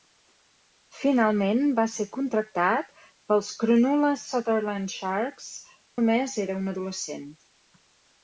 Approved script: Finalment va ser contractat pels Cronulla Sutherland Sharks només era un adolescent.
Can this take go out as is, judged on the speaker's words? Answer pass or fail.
pass